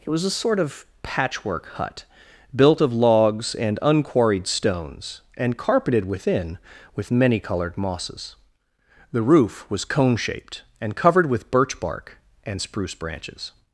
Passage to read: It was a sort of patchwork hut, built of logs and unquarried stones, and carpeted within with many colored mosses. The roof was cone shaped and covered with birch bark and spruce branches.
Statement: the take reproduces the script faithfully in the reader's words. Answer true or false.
true